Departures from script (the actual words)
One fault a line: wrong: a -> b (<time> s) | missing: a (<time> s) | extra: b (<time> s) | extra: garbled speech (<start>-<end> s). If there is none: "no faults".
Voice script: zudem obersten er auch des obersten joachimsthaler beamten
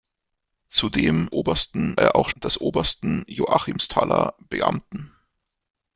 no faults